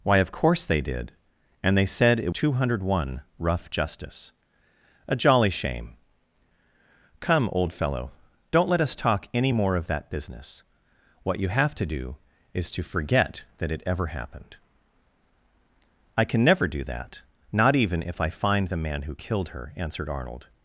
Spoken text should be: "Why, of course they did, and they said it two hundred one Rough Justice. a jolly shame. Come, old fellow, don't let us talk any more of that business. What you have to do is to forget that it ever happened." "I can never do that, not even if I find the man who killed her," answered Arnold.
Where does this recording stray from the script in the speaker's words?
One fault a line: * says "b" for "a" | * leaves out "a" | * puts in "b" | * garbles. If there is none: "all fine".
all fine